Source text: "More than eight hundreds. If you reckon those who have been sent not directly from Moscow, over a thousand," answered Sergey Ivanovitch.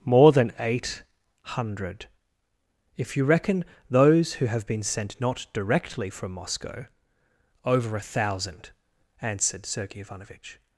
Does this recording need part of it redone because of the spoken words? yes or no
yes